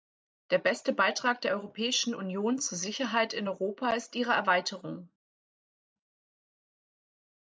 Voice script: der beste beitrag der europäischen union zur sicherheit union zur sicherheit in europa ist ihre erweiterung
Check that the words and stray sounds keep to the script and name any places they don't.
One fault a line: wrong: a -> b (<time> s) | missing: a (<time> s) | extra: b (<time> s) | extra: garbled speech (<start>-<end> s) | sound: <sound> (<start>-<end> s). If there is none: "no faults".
missing: union zur sicherheit (3.3 s)